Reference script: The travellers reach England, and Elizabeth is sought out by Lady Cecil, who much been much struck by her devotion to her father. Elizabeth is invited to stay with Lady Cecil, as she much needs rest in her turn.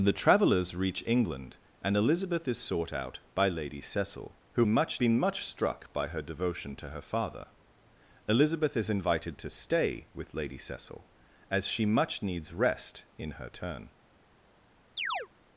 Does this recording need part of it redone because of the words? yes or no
no